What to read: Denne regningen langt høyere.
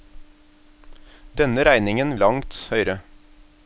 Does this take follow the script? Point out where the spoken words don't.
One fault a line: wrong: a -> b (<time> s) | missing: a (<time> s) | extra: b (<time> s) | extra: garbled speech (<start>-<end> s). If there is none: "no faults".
no faults